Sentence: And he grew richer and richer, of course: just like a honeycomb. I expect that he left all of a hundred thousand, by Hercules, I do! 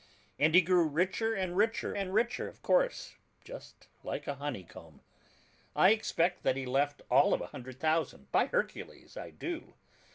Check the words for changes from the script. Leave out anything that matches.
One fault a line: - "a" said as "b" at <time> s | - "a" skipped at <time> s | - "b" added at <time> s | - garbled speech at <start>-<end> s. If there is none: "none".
- "and richer" added at 1.9 s